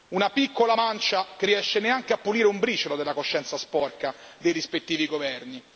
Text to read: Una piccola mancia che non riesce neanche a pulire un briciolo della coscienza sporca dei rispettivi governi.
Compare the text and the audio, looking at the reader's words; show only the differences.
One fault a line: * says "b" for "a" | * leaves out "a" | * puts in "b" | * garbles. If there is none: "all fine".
* leaves out "non"